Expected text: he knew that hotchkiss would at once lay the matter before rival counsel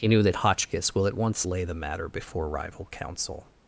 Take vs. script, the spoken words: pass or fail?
fail